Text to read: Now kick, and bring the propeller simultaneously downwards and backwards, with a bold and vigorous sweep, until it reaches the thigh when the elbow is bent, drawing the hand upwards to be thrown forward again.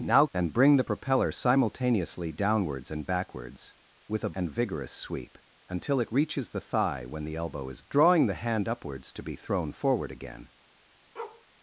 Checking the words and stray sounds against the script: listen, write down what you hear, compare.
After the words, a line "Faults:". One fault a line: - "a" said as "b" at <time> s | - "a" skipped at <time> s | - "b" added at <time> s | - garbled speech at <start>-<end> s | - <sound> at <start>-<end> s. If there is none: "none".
Now and bring the propeller simultaneously downwards and backwards, with a and vigorous sweep, until it reaches the thigh when the elbow is drawing the hand upwards to be thrown forward again.
Faults:
- "kick" skipped at 0.2 s
- "bold" skipped at 4.3 s
- "bent" skipped at 7.8 s
- bark at 11.2-11.5 s